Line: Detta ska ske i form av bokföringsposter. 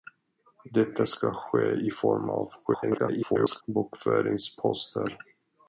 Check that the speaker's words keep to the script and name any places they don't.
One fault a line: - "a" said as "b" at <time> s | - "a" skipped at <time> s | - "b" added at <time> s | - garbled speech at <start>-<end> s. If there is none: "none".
- garbled speech at 2.6-3.6 s